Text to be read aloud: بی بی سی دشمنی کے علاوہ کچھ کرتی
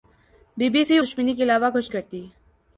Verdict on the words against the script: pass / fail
pass